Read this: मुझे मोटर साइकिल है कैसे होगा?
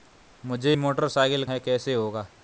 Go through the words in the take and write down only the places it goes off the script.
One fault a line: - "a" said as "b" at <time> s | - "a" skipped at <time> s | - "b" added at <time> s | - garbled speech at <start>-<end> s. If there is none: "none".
none